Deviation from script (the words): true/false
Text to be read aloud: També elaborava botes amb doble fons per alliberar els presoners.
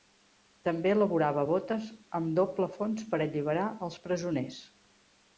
false